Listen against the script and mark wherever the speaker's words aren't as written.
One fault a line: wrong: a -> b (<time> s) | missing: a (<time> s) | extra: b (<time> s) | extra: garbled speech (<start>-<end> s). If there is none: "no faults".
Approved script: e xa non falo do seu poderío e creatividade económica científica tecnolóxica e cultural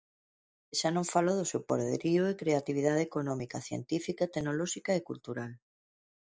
no faults